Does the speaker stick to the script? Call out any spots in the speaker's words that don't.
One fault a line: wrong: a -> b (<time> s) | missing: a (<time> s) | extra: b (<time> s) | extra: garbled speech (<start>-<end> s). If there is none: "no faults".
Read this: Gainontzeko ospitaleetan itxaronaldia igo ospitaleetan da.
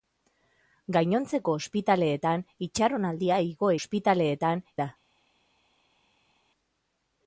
no faults